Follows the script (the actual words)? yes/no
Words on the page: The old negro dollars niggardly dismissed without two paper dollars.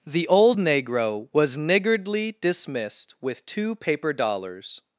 no